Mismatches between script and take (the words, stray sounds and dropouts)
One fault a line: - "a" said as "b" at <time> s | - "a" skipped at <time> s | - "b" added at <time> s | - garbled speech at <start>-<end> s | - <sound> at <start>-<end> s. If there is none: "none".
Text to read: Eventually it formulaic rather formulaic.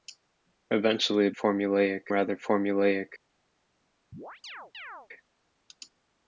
- chirp at 4.1-5.1 s